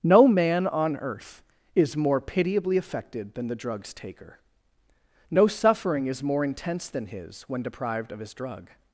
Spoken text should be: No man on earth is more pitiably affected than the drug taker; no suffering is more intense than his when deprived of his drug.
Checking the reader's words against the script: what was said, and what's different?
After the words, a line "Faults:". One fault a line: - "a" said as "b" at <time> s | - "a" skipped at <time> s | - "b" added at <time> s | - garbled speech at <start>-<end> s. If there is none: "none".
No man on earth is more pitiably affected than the drugs taker; no suffering is more intense than his when deprived of his drug.
Faults:
- "drug" said as "drugs" at 3.5 s